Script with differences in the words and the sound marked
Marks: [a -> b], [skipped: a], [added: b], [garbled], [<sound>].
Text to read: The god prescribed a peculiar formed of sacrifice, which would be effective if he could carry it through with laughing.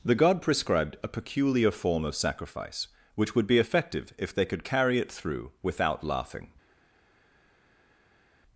The god prescribed a peculiar [formed -> form] of sacrifice, which would be effective if [he -> they] could carry it through [with -> without] laughing.